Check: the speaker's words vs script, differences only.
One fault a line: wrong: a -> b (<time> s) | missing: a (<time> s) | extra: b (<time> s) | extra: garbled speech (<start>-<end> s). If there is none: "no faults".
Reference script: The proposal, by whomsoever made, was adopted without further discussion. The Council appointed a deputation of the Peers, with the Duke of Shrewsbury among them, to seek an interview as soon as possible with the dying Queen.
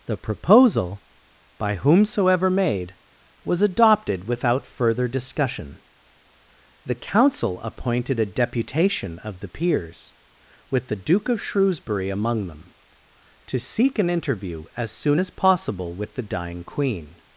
no faults